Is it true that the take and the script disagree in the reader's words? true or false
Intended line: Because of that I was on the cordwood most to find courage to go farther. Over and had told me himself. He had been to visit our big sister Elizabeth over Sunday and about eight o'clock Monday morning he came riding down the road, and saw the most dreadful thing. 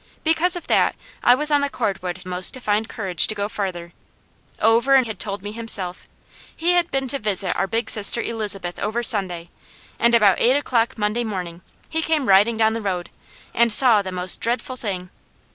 false